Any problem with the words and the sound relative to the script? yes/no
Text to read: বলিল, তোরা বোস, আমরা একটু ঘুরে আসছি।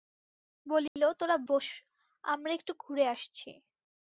yes